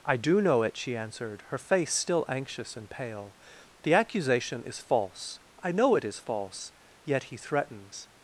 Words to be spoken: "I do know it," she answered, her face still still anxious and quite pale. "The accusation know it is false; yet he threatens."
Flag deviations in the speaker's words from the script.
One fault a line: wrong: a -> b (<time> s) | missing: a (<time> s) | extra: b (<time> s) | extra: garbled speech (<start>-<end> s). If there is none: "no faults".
missing: still (2.2 s)
missing: quite (2.9 s)
extra: is false I (4.6 s)